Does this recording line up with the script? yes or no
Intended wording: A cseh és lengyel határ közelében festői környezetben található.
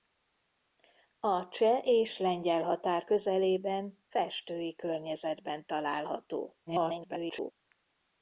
no